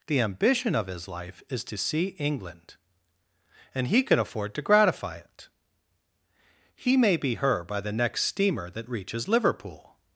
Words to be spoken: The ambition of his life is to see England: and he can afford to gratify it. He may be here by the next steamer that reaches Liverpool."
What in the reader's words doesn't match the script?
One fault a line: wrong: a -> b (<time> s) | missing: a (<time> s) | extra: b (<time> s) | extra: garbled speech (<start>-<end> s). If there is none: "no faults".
wrong: here -> her (7.3 s)